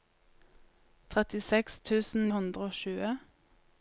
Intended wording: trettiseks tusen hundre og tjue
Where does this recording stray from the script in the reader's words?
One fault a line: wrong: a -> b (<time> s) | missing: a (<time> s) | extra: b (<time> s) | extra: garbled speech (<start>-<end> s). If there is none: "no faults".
no faults